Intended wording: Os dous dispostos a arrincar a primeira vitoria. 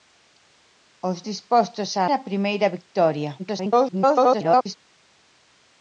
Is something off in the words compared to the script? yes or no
yes